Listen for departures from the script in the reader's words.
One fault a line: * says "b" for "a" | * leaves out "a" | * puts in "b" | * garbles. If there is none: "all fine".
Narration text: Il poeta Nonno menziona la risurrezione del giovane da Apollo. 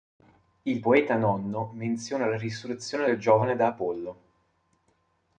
all fine